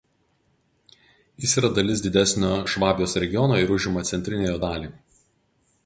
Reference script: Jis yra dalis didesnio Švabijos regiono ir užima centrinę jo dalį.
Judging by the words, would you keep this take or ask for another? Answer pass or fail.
pass